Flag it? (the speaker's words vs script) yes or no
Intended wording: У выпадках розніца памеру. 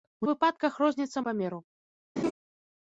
no